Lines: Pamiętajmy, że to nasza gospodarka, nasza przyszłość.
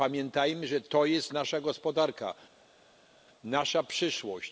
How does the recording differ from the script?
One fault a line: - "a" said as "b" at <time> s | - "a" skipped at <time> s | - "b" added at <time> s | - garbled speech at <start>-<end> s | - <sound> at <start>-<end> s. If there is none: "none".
- "jest" added at 1.1 s